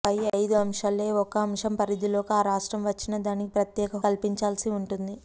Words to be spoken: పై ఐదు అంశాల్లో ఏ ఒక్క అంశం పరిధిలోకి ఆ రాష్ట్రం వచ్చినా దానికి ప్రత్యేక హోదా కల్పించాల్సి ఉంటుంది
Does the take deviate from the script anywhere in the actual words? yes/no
yes